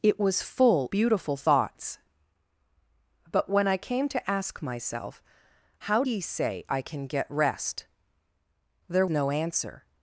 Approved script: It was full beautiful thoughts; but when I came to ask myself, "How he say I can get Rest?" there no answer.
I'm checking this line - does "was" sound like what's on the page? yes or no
yes